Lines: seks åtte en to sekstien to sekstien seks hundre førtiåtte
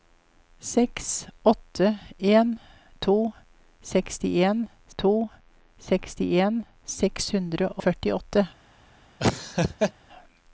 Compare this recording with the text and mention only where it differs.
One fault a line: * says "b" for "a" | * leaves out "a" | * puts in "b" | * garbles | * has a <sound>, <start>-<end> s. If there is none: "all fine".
* has a laugh, 9.2-9.9 s